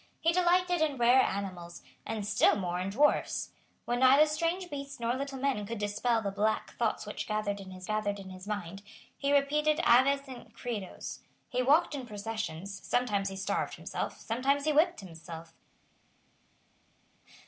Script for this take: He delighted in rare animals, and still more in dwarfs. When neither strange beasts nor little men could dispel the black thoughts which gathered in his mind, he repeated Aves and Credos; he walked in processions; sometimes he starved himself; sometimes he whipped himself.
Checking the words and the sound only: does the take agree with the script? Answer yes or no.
no